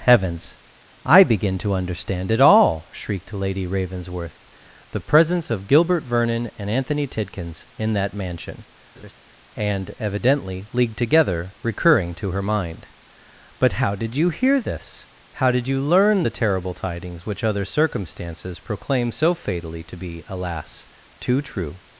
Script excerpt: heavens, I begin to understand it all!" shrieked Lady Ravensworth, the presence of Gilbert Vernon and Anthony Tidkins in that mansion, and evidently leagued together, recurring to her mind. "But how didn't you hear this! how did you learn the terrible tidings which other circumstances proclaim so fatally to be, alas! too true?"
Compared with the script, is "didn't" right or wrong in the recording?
wrong